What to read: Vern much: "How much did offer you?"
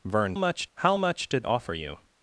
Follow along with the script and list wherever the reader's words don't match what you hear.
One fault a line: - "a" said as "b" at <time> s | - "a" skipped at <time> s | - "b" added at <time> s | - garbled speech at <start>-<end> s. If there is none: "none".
none